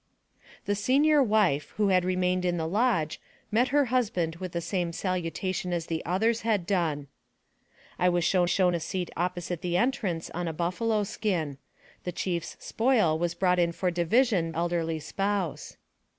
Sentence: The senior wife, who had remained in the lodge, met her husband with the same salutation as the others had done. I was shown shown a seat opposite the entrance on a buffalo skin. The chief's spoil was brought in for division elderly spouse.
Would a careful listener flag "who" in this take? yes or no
no